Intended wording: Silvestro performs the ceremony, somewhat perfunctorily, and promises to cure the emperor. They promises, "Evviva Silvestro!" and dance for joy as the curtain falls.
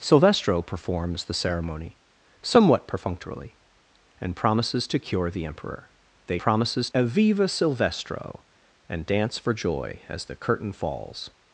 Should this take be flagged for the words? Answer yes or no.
no